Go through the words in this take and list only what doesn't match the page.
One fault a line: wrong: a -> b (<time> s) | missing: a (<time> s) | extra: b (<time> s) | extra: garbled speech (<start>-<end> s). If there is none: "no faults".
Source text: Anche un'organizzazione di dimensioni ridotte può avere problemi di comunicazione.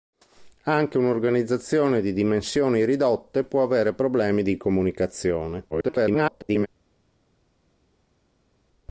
extra: garbled speech (5.7-6.7 s)